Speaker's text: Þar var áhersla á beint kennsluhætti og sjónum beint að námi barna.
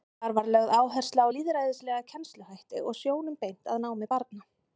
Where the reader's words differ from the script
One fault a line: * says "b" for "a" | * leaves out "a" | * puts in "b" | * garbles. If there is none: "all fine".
* puts in "lögð"
* says "lýðræðislega" for "beint"